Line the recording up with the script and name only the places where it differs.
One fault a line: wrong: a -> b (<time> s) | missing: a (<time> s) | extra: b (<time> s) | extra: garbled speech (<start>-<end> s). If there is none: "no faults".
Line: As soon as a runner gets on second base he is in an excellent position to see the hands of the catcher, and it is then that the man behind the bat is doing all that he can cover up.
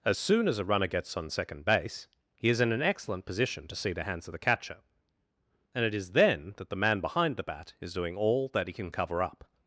no faults